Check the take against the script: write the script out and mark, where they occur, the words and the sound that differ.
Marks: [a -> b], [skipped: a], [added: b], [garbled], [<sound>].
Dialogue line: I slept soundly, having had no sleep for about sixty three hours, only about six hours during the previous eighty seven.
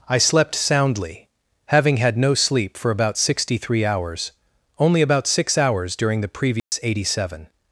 I slept soundly, having had no sleep for about sixty three hours, only about six hours during the previous [dropout] eighty seven.